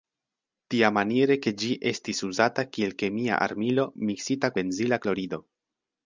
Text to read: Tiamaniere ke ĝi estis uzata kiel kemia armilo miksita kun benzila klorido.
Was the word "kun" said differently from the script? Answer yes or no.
yes